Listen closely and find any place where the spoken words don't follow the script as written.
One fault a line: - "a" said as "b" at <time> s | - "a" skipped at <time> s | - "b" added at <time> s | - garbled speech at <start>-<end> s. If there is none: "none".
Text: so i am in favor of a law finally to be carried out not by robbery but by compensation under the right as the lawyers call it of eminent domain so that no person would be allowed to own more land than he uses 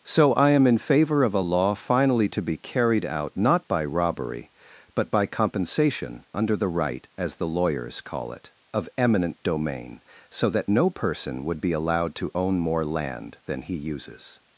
none